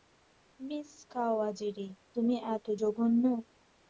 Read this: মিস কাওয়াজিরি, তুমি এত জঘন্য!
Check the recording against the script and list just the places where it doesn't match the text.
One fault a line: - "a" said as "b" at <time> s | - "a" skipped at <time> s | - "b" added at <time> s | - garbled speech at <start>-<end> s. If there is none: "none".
none